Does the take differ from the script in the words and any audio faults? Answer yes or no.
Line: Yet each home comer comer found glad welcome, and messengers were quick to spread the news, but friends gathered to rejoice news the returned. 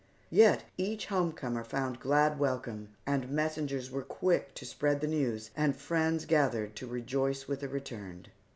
yes